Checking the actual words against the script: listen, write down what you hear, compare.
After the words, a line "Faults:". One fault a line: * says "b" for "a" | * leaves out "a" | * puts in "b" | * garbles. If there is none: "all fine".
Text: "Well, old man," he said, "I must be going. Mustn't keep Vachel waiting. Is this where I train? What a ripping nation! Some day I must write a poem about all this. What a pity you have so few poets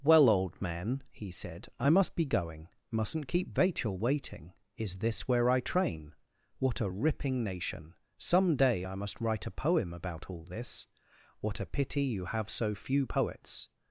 "Well, old man," he said, "I must be going. Mustn't keep Vachel waiting. Is this where I train? What a ripping nation! Some day I must write a poem about all this. What a pity you have so few poets
Faults:
all fine